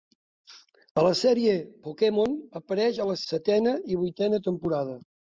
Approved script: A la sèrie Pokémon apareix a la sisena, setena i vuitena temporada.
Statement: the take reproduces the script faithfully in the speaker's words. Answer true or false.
false